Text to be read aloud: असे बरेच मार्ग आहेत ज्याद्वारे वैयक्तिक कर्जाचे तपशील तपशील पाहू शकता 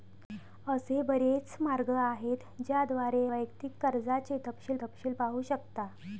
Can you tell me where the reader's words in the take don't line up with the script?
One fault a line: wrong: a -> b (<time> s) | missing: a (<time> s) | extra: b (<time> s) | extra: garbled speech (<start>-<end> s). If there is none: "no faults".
no faults